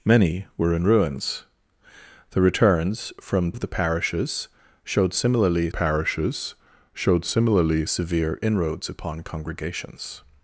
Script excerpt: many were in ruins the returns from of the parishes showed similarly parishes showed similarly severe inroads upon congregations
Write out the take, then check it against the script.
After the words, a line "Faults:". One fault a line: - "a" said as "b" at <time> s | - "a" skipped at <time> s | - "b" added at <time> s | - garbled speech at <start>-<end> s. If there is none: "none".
many were in ruins the returns from of the parishes showed similarly parishes showed similarly severe inroads upon congregations
Faults:
none